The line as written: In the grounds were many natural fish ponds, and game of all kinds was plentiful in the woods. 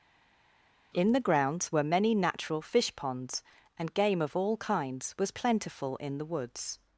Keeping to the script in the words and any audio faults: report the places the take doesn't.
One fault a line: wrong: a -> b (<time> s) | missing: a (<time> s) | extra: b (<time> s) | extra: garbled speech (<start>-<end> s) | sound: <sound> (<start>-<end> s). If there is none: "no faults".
no faults